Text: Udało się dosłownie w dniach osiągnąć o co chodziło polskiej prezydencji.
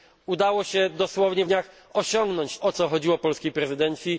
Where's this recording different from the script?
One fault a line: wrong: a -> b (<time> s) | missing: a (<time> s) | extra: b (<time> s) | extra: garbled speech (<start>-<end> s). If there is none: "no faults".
no faults